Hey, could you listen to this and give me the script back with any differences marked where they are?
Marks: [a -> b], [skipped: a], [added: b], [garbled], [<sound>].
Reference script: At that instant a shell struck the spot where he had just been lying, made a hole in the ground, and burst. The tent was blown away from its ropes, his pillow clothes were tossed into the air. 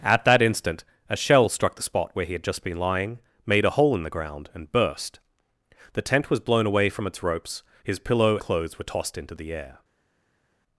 At that instant a shell struck the spot where he had just been lying, made a hole in the ground, and burst. The tent was blown away from its ropes, his pillow clothes were tossed into the air.